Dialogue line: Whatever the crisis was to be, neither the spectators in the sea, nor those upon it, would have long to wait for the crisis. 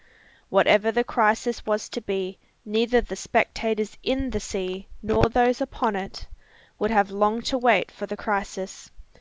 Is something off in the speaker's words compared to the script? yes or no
no